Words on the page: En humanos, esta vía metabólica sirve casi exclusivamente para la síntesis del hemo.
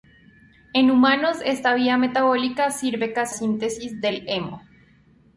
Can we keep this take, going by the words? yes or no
no